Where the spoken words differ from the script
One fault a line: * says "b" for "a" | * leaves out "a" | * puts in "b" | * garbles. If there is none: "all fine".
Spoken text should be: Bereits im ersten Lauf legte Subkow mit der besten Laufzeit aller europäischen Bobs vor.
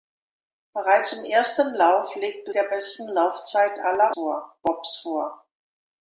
* leaves out "Subkow mit"
* says "vor" for "europäischen"